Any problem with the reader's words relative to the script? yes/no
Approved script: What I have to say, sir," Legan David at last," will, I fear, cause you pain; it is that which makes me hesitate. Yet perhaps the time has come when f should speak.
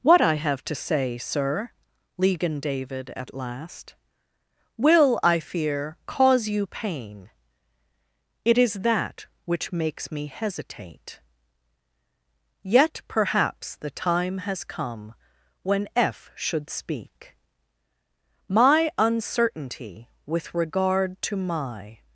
yes